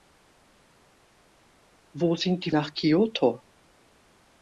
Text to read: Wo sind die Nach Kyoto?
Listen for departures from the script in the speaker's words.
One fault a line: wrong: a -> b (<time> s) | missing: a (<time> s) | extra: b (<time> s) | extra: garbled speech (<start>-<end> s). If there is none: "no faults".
no faults